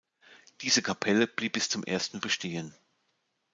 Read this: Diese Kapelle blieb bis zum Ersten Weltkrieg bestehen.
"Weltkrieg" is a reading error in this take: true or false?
true